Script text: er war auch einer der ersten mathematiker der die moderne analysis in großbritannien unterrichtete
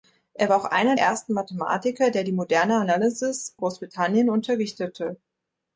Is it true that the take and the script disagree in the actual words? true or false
true